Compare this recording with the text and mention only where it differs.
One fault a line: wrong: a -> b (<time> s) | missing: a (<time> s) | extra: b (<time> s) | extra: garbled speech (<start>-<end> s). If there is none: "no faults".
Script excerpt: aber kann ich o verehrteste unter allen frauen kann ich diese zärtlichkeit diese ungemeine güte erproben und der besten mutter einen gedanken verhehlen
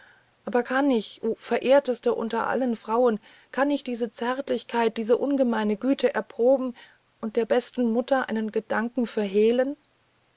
no faults